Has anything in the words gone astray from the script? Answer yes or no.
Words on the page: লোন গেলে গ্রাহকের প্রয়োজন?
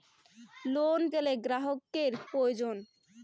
no